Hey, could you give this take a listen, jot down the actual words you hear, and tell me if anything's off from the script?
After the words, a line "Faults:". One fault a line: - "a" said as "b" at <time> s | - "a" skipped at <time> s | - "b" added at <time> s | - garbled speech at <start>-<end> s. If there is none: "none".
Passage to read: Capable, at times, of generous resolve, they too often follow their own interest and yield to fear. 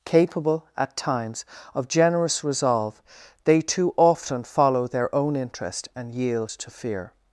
Capable, at times, of generous resolve, they too often follow their own interest and yield to fear.
Faults:
none